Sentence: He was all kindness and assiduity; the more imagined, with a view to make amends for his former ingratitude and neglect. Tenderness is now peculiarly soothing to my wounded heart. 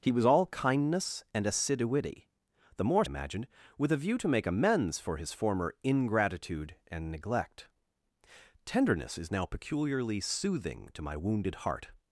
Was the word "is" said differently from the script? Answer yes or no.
no